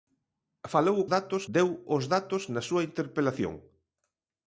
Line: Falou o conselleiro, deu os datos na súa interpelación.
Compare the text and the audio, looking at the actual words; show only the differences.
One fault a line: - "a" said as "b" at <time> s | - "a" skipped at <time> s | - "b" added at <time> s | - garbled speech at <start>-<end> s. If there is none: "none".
- "conselleiro" said as "datos" at 1.1 s